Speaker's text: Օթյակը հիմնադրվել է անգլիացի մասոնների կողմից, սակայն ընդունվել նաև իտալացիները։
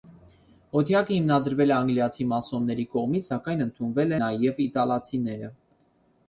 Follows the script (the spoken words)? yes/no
yes